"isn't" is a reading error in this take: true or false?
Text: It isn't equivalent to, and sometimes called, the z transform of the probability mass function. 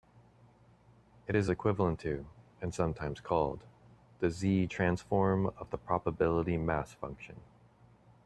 true